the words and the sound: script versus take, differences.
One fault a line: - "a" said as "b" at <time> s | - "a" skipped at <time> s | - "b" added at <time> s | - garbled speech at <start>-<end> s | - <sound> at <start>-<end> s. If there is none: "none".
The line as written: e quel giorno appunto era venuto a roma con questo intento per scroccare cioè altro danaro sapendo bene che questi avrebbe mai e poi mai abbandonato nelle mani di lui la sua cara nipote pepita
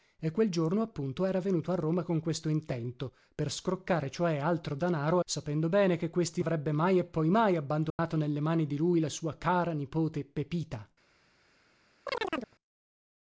- dropout at 7.9-8.0 s
- chirp at 12.1-12.6 s